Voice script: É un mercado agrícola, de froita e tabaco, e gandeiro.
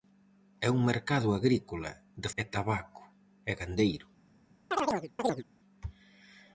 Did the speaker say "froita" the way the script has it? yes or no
no